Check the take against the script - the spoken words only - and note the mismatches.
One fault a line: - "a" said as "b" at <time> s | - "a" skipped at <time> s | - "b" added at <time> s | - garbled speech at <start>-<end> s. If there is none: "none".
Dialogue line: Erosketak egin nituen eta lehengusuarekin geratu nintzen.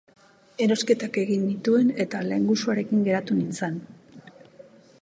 none